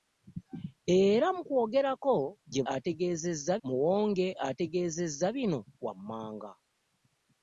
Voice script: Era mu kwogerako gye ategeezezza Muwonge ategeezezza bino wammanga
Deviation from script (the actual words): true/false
false